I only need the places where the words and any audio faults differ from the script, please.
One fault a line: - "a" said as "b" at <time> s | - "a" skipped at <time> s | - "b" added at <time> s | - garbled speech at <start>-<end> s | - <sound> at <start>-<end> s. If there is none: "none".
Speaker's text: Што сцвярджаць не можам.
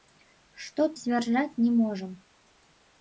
none